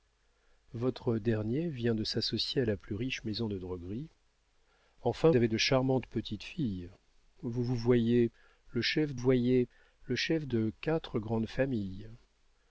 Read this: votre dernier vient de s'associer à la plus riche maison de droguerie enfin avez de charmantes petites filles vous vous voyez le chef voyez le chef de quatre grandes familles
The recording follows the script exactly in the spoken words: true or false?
true